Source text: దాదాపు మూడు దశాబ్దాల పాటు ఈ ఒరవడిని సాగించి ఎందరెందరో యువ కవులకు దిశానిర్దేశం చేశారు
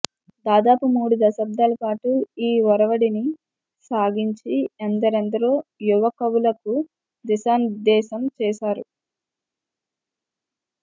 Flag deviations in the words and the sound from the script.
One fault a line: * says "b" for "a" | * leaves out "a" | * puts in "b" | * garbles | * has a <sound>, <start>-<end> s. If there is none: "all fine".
all fine